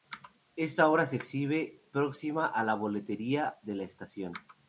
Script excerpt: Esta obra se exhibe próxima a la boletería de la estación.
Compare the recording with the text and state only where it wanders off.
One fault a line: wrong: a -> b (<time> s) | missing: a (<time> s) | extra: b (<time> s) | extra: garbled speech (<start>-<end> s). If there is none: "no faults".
no faults